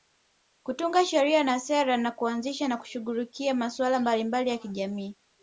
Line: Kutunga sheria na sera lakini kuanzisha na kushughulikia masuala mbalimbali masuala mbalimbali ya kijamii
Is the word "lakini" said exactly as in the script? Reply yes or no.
no